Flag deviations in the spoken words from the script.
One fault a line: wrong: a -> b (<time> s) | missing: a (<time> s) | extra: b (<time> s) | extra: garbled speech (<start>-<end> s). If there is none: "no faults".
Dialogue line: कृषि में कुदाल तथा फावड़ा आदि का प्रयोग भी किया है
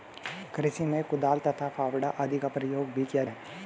no faults